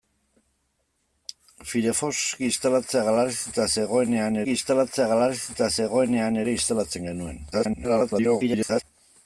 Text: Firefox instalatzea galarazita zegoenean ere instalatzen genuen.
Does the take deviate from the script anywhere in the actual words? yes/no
yes